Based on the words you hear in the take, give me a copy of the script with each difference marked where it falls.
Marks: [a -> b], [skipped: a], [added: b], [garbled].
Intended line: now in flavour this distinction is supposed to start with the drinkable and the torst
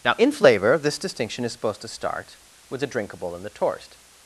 now in flavour this distinction is supposed to start with the drinkable and the torst